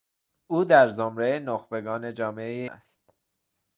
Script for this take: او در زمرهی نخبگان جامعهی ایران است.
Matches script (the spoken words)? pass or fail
fail